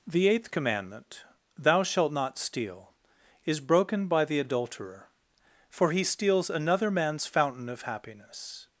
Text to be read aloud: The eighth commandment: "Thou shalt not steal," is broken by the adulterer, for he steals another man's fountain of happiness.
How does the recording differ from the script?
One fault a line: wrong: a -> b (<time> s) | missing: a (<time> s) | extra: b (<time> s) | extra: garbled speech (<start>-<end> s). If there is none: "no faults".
no faults